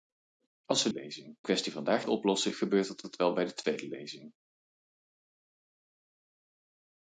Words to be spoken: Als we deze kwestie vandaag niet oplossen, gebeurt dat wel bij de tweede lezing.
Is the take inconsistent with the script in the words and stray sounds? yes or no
yes